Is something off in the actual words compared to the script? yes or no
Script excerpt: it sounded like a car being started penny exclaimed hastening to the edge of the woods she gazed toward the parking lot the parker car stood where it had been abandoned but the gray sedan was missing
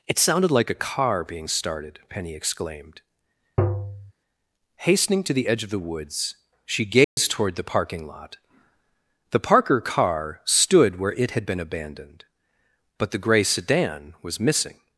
no